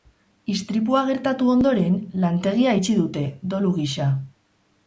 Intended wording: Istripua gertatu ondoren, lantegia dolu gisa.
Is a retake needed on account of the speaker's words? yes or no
yes